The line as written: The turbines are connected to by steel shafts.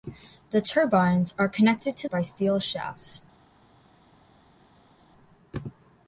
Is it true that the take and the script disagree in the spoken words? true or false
false